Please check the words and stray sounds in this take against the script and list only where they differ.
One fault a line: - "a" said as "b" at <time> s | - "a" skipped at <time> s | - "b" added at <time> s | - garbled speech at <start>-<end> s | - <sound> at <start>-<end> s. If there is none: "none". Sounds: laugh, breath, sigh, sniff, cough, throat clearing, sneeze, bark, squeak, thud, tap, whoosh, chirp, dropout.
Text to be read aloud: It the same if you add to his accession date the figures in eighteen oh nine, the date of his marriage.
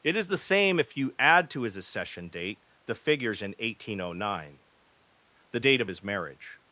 - "is" added at 0.1 s